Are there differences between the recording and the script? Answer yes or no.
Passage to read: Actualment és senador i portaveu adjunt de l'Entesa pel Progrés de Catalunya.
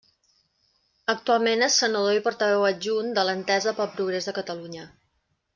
no